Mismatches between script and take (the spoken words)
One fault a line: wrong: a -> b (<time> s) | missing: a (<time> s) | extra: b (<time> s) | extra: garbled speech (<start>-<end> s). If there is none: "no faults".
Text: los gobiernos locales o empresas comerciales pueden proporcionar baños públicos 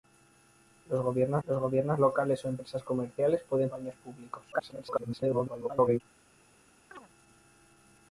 extra: los gobiernos (1.5 s)
missing: proporcionar (3.7 s)
extra: garbled speech (4.5-6.0 s)